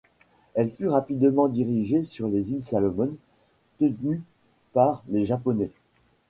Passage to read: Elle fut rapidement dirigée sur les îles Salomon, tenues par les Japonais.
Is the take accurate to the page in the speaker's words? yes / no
yes